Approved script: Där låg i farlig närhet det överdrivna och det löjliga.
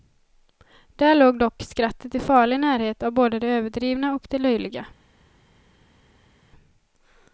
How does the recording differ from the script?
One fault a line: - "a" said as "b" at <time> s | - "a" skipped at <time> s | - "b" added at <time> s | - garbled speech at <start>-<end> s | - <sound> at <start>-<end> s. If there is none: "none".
- "dock skrattet" added at 1.4 s
- "av både" added at 3.0 s